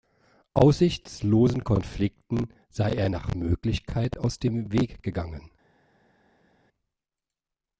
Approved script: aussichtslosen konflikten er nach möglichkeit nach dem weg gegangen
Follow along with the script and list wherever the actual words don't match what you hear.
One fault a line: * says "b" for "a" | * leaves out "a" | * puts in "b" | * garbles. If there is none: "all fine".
* puts in "sei"
* says "aus" for "nach"